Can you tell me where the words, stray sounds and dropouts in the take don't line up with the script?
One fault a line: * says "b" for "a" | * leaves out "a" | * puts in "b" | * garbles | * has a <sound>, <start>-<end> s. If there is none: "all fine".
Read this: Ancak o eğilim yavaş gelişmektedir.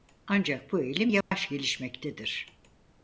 * says "bu" for "o"
* has a dropout, 1.2-1.3 s